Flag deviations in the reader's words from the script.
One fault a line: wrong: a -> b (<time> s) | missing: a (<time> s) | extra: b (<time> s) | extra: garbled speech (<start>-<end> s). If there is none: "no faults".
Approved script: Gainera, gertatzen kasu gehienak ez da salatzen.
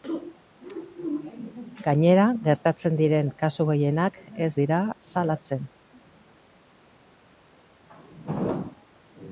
extra: diren (3.0 s)
wrong: da -> dira (4.6 s)